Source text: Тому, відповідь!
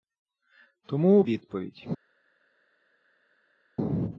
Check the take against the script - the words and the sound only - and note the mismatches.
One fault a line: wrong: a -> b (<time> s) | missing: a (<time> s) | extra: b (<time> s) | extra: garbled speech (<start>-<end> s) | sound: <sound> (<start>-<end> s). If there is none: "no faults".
no faults